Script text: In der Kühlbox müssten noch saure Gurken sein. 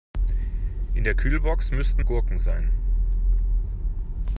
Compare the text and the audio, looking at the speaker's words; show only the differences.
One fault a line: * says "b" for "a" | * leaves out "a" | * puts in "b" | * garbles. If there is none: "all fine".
* leaves out "noch saure"